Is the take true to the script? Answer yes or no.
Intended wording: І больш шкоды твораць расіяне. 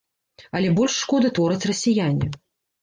no